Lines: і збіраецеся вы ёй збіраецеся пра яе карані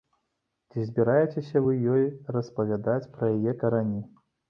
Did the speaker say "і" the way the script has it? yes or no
no